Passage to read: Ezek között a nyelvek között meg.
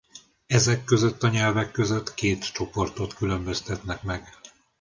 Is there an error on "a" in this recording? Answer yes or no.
no